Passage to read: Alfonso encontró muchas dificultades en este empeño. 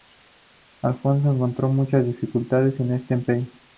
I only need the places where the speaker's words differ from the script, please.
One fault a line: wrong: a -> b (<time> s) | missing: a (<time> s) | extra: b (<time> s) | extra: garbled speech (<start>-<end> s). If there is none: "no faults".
no faults